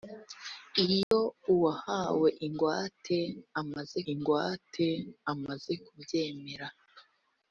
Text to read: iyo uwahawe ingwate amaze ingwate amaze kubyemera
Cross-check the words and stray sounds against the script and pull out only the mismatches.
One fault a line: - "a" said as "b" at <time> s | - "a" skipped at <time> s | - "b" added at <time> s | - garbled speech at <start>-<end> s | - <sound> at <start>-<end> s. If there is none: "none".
- dropout at 1.0-1.1 s